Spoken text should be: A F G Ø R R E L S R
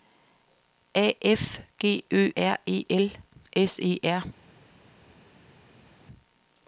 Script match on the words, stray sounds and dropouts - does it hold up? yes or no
no